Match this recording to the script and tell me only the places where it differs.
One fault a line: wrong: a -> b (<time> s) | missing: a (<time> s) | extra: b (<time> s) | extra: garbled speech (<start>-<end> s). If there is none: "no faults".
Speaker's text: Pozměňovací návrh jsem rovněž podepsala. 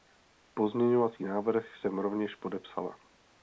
no faults